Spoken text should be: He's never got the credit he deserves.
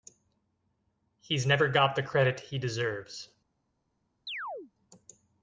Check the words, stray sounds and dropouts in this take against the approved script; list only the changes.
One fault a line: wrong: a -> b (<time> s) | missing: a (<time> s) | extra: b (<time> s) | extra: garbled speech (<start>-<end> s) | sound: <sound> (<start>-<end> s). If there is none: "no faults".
sound: chirp (4.3-4.7 s)